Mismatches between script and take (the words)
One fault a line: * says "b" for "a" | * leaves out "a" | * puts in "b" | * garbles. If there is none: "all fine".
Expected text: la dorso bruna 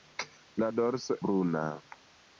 all fine